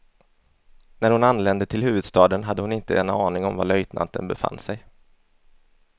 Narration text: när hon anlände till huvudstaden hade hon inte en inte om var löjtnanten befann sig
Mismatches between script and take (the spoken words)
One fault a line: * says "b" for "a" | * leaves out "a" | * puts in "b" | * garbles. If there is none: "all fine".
* says "aning" for "inte"